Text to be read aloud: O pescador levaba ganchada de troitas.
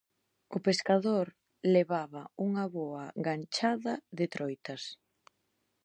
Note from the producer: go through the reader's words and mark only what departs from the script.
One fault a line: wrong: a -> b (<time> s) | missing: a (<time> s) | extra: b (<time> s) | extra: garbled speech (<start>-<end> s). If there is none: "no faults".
extra: unha boa (2.5 s)